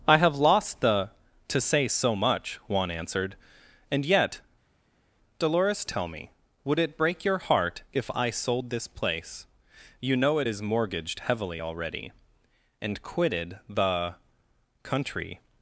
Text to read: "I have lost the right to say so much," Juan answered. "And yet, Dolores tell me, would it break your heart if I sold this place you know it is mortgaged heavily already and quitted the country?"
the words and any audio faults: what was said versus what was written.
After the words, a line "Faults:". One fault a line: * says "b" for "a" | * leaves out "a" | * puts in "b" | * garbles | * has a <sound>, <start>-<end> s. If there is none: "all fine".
"I have lost the to say so much," Juan answered. "And yet, Dolores tell me, would it break your heart if I sold this place you know it is mortgaged heavily already and quitted the country?"
Faults:
* leaves out "right"